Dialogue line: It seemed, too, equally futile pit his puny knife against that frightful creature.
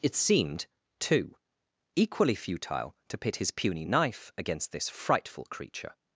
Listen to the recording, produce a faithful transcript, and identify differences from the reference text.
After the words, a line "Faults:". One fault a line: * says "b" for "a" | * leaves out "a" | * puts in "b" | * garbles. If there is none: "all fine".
It seemed, too, equally futile to pit his puny knife against this frightful creature.
Faults:
* puts in "to"
* says "this" for "that"